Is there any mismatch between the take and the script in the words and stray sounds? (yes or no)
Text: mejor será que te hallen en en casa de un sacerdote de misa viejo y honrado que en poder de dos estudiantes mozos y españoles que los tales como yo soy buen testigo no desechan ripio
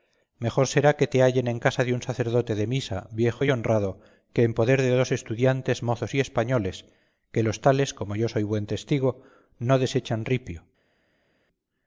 yes